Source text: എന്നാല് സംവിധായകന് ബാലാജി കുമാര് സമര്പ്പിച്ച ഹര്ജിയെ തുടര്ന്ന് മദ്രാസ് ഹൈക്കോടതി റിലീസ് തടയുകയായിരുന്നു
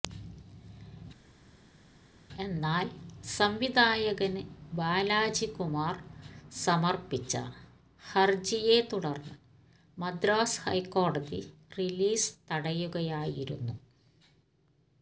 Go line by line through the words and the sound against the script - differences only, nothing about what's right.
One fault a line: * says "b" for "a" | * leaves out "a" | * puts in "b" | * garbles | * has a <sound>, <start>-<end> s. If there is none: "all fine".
all fine